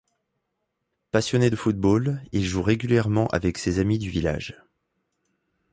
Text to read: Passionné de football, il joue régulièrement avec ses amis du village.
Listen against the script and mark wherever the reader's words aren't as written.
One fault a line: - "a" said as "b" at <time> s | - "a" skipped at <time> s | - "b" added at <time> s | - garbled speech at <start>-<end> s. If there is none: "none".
none